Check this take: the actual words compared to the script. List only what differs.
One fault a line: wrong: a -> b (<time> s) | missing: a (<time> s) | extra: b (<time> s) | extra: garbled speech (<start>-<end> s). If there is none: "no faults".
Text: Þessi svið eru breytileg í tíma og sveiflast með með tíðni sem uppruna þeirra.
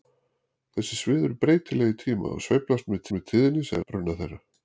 no faults